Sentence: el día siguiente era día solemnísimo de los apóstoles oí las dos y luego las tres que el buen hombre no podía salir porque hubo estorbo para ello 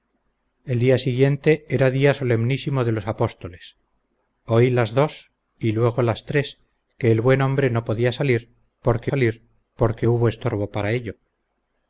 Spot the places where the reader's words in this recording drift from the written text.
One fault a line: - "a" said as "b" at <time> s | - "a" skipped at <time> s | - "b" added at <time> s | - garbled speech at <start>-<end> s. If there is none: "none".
- "salir porque" added at 9.1 s